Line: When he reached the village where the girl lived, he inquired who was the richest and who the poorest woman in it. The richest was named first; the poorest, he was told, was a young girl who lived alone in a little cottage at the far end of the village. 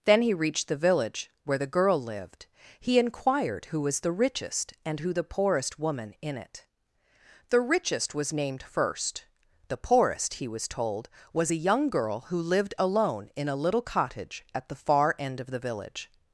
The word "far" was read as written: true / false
true